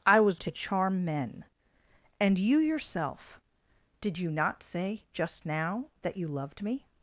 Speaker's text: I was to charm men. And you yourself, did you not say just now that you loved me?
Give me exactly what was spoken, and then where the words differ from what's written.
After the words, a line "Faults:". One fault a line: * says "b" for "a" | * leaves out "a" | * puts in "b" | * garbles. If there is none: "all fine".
I was to charm men. And you yourself, did you not say just now that you loved me?
Faults:
all fine